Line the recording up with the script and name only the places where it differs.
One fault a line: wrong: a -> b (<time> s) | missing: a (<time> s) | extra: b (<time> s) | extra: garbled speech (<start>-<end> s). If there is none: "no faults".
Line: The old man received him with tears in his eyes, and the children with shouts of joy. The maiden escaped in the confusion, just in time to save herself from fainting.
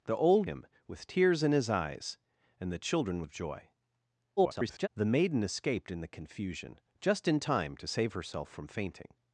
missing: man received (0.5 s)
missing: with shouts (3.2 s)
extra: garbled speech (4.4-4.9 s)